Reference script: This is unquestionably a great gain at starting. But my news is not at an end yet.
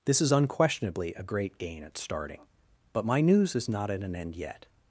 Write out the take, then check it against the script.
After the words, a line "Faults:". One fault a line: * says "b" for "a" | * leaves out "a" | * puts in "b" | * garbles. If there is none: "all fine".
This is unquestionably a great gain at starting. But my news is not at an end yet.
Faults:
all fine